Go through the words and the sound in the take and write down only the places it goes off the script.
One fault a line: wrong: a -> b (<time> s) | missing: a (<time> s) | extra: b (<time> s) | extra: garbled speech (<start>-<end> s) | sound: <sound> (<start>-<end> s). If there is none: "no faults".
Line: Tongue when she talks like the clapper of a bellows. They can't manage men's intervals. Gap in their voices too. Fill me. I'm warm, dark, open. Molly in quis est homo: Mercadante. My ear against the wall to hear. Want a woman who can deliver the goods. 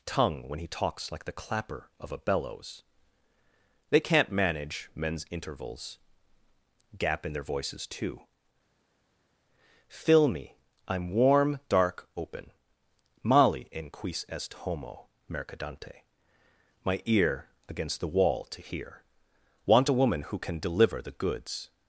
wrong: she -> he (0.6 s)